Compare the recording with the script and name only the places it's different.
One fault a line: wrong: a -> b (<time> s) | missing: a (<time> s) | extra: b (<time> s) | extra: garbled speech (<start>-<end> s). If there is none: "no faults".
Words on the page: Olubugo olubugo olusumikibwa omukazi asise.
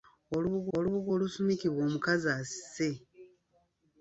no faults